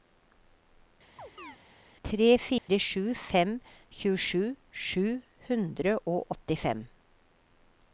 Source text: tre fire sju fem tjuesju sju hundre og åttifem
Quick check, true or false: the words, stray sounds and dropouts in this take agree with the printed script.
false